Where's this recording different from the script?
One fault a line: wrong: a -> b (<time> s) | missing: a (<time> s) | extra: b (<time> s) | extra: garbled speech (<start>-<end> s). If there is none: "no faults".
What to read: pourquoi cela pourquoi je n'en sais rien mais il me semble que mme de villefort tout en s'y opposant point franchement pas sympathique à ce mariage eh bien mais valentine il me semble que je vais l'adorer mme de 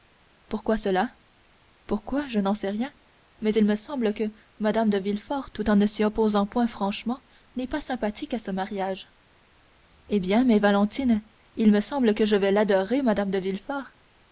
extra: ne (5.8 s)
extra: n'est (7.6 s)